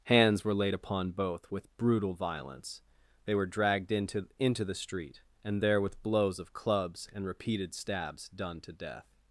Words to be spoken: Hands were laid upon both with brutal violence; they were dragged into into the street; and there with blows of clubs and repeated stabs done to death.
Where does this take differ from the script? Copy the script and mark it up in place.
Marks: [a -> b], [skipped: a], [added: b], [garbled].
Hands were laid upon both with brutal violence; they were dragged into into the street; and there with blows of clubs and repeated stabs done to death.